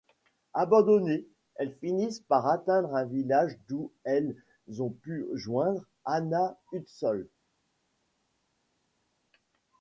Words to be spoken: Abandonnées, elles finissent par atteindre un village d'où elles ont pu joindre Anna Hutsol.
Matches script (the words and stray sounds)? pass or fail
pass